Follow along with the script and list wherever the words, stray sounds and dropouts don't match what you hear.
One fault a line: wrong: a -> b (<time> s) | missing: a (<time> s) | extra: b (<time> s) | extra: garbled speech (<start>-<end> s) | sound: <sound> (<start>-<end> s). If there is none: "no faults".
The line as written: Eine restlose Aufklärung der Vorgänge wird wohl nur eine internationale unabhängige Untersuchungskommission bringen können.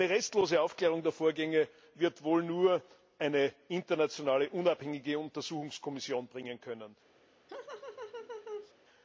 sound: laugh (7.5-8.7 s)